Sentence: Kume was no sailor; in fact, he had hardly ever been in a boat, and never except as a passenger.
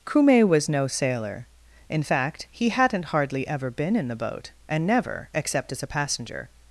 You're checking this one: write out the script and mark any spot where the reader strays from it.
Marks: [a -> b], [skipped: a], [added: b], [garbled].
Kume was no sailor; in fact, he [had -> hadn't] hardly ever been in [a -> the] boat, and never except as a passenger.